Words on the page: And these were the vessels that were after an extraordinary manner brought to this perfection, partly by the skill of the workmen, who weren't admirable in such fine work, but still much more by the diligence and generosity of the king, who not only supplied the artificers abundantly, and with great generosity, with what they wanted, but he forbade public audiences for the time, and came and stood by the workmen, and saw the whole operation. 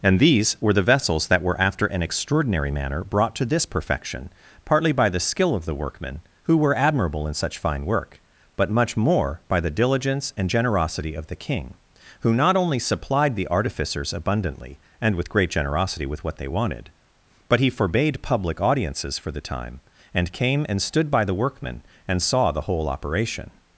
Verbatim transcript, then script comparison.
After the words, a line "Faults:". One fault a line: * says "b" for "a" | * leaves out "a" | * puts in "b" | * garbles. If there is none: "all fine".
And these were the vessels that were after an extraordinary manner brought to this perfection, partly by the skill of the workmen, who were admirable in such fine work, but much more by the diligence and generosity of the king, who not only supplied the artificers abundantly, and with great generosity, with what they wanted, but he forbade public audiences for the time, and came and stood by the workmen, and saw the whole operation.
Faults:
* says "were" for "weren't"
* leaves out "still"